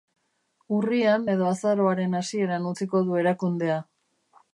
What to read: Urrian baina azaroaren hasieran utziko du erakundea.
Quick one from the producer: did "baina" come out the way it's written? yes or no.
no